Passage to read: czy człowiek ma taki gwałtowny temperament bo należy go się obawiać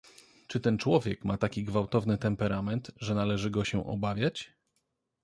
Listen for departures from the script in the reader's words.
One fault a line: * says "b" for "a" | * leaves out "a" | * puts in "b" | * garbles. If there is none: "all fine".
* puts in "ten"
* says "że" for "bo"